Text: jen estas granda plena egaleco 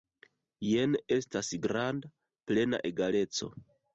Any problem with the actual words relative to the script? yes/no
no